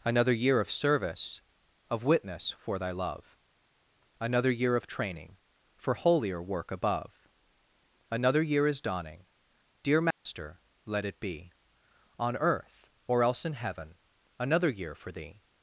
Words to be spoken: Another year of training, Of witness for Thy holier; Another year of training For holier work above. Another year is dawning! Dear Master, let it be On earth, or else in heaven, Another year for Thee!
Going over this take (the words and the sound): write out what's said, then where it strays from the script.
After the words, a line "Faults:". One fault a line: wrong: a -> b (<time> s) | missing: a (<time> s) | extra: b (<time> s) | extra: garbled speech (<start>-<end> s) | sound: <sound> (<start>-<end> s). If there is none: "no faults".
Another year of service, Of witness for Thy love; Another year of training For holier work above. Another year is dawning! Dear Master, let it be On earth, or else in heaven, Another year for Thee!
Faults:
wrong: training -> service (0.7 s)
wrong: holier -> love (2.9 s)
sound: dropout (10.1-10.3 s)